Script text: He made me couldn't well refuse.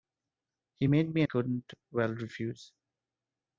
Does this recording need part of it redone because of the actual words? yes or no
no